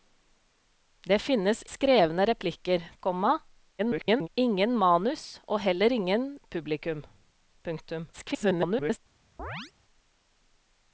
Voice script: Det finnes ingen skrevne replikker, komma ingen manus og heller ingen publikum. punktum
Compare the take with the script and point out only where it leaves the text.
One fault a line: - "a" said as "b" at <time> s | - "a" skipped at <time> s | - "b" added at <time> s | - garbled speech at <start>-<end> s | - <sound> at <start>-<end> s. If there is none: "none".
- "ingen" skipped at 1.6 s
- garbled speech at 3.8-4.3 s
- garbled speech at 8.1-9.0 s
- chirp at 9.4-9.7 s